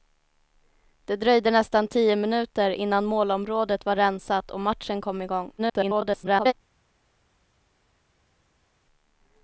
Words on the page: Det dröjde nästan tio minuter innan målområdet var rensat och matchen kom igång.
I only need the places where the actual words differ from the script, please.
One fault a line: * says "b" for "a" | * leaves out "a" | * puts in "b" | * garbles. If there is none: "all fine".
* garbles